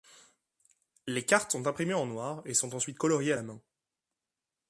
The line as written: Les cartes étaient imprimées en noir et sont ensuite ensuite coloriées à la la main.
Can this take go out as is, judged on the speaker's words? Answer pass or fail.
fail